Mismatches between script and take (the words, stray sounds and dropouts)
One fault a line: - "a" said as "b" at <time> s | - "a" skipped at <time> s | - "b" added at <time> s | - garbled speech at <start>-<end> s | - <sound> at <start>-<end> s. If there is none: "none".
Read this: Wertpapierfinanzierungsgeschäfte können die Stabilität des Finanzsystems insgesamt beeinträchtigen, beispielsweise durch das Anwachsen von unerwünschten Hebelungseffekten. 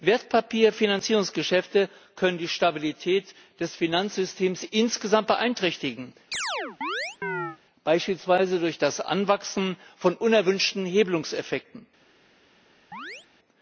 - chirp at 6.3-7.6 s
- chirp at 12.9-13.3 s